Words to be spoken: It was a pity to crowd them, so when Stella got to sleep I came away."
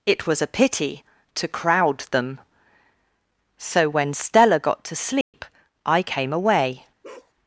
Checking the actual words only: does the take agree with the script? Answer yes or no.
yes